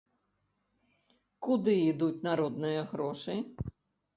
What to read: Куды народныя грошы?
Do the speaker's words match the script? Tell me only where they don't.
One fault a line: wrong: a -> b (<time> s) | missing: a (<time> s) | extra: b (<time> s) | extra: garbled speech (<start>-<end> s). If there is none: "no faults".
extra: ідуць (1.9 s)